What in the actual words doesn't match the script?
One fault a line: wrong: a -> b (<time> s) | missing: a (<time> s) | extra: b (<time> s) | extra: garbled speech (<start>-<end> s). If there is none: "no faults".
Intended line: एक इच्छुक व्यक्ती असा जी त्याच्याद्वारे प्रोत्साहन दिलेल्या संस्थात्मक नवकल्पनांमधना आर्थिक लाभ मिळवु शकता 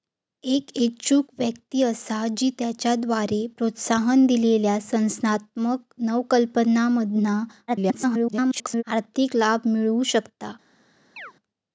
extra: garbled speech (7.7-8.8 s)